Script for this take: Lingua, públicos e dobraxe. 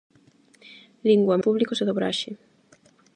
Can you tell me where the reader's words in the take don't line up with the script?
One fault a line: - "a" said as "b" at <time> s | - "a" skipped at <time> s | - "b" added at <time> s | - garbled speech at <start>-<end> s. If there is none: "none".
none